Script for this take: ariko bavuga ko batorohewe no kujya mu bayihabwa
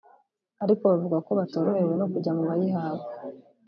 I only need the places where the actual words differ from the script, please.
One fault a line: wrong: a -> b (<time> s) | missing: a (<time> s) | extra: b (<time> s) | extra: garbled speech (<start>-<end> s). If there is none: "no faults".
no faults